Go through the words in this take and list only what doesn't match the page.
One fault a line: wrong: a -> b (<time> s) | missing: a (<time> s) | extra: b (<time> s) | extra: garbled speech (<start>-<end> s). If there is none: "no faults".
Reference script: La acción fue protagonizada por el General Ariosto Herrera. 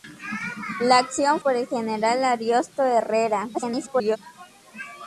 missing: fue protagonizada (1.4 s)
extra: garbled speech (3.5-4.2 s)